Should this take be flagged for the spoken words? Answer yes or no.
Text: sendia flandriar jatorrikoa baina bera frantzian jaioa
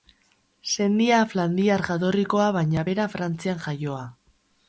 no